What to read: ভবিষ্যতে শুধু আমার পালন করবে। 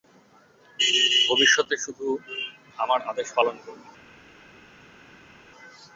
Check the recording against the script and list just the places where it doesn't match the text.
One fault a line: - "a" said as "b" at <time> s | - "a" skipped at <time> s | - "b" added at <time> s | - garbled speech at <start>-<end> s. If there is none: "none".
- "আদেশ" added at 3.0 s